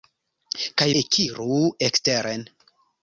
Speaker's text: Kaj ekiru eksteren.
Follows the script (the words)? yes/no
yes